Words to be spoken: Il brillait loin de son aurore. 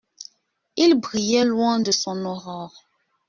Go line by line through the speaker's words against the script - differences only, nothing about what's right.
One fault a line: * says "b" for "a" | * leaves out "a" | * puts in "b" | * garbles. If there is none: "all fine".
all fine